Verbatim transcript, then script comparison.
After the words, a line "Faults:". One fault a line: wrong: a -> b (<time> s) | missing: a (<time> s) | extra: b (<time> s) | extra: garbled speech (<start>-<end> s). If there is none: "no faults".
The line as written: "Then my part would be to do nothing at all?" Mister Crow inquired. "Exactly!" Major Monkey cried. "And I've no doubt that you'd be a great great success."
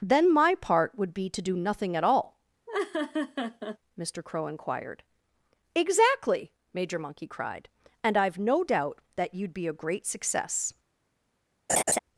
"Then my part would be to do nothing at all?" Mister Crow inquired. "Exactly!" Major Monkey cried. "And I've no doubt that you'd be a great success."
Faults:
missing: great (10.0 s)